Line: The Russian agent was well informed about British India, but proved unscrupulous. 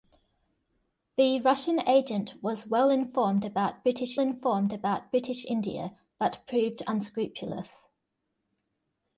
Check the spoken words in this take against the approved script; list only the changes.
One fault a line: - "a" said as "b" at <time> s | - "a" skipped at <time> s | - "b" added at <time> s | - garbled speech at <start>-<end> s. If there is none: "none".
- "informed about British" added at 4.2 s